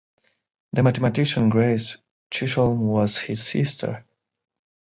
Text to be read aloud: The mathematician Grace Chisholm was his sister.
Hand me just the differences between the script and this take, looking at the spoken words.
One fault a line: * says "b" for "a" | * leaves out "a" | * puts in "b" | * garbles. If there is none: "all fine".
all fine